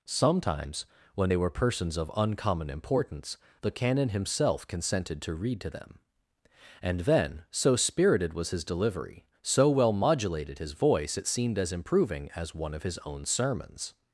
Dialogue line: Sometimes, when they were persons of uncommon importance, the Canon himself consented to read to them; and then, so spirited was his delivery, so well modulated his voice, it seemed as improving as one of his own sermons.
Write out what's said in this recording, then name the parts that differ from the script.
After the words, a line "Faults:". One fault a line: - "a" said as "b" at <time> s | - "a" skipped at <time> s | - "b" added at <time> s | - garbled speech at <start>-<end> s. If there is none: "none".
Sometimes, when they were persons of uncommon importance, the Canon himself consented to read to them; and then, so spirited was his delivery, so well modulated his voice, it seemed as improving as one of his own sermons.
Faults:
none